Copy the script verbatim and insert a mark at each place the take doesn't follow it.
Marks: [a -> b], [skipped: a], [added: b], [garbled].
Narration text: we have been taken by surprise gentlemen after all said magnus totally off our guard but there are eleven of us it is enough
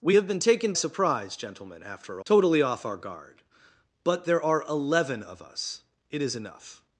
we have been taken [skipped: by] surprise gentlemen after [skipped: all said magnus] totally off our guard but there are eleven of us it is enough